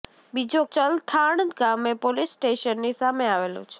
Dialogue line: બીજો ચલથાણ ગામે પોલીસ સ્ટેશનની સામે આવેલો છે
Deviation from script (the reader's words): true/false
false